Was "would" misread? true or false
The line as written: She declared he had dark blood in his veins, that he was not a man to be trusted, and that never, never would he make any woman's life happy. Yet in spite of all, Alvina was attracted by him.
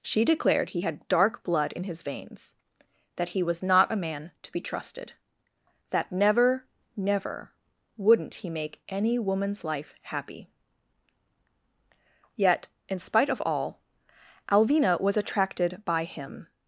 true